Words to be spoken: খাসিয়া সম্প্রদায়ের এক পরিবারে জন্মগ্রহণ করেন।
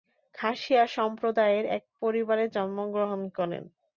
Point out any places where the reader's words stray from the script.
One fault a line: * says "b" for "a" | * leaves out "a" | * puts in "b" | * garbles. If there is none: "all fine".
all fine